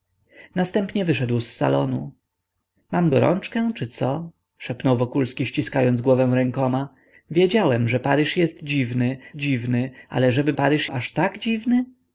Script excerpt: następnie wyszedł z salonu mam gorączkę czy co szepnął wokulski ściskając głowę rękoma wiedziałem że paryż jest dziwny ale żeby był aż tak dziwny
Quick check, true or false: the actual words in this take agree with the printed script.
false